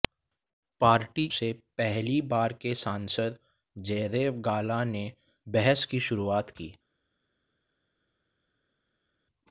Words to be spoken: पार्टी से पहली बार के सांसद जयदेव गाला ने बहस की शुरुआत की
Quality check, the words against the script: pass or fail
pass